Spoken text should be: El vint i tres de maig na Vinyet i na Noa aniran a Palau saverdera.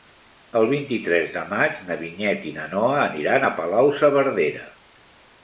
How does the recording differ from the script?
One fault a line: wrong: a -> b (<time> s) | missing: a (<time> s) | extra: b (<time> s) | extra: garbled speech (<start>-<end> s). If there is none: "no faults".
no faults